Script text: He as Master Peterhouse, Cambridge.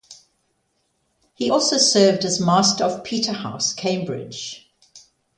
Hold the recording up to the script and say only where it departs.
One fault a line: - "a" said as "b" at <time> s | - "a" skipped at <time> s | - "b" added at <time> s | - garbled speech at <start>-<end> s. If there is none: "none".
- "also served" added at 1.5 s
- "of" added at 2.8 s